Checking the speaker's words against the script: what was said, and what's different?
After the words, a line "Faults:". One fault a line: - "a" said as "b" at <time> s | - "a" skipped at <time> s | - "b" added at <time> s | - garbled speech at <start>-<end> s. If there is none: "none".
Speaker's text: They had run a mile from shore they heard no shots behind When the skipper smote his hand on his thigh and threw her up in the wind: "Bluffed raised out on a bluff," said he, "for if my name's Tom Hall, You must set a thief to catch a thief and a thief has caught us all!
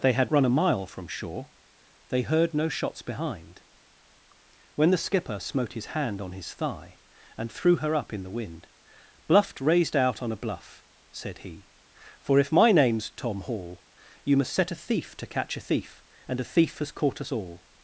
They had run a mile from shore they heard no shots behind When the skipper smote his hand on his thigh and threw her up in the wind: "Bluffed raised out on a bluff," said he, "for if my name's Tom Hall, You must set a thief to catch a thief and a thief has caught us all!
Faults:
none